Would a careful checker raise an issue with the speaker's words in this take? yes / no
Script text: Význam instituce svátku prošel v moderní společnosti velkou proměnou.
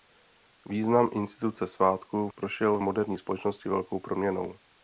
no